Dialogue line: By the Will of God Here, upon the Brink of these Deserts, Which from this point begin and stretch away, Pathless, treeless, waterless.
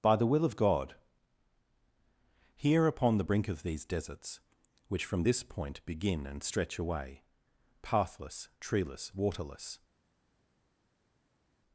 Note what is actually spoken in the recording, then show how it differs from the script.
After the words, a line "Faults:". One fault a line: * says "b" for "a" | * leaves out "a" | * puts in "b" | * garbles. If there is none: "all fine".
By the Will of God Here, upon the Brink of these Deserts, Which from this point begin and stretch away, Pathless, treeless, waterless.
Faults:
all fine